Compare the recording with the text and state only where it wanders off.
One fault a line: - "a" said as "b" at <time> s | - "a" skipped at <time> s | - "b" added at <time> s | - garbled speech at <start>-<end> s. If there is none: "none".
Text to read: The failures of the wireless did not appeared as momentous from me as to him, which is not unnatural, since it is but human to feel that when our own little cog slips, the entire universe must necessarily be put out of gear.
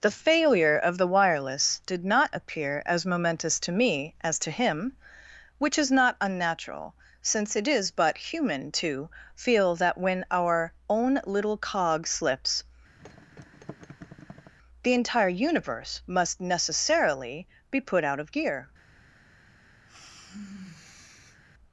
- "failures" said as "failure" at 0.1 s
- "appeared" said as "appear" at 2.3 s
- "from" said as "to" at 3.6 s